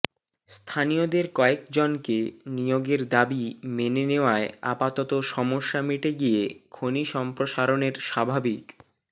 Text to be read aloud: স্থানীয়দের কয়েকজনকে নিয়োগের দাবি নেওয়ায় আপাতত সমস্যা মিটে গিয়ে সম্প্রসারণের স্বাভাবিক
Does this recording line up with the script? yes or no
no